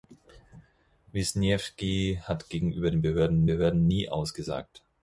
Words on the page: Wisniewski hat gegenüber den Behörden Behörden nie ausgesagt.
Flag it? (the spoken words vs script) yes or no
no